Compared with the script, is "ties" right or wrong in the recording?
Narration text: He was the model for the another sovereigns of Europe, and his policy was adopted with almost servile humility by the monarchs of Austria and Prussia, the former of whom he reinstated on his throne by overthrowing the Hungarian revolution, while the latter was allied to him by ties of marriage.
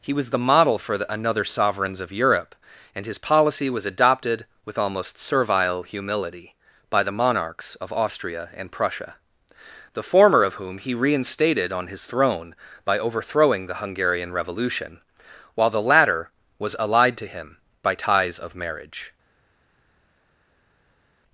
right